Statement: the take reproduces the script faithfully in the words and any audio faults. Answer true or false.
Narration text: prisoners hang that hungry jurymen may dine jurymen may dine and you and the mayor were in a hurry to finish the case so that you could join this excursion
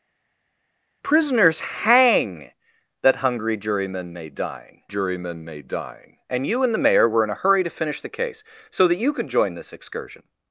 true